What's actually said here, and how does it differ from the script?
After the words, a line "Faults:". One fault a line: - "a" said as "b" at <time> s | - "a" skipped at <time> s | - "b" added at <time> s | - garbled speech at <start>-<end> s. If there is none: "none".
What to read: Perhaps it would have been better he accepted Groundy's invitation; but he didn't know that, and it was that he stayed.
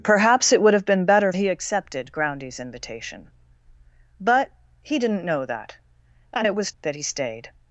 Perhaps it would have been better he accepted Groundy's invitation; but he didn't know that, and it was that he stayed.
Faults:
none